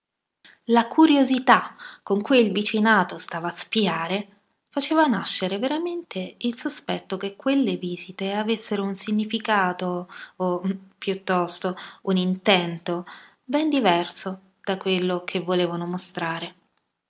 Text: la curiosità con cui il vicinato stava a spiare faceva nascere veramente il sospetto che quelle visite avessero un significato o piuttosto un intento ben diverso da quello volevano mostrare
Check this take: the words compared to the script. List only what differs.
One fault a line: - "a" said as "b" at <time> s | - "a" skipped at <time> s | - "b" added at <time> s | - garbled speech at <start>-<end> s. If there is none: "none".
- "che" added at 15.3 s